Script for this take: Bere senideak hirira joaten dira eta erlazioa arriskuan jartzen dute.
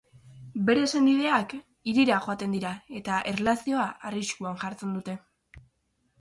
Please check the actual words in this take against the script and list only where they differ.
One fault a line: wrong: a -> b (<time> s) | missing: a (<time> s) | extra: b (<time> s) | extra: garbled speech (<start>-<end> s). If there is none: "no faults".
no faults